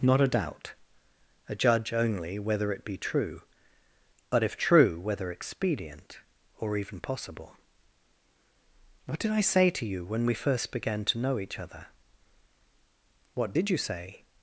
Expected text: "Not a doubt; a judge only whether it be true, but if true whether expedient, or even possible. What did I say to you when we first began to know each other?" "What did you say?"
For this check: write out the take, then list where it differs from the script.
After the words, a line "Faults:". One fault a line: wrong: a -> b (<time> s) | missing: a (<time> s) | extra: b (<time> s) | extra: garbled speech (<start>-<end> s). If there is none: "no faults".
"Not a doubt; a judge only whether it be true, but if true whether expedient, or even possible. What did I say to you when we first began to know each other?" "What did you say?"
Faults:
no faults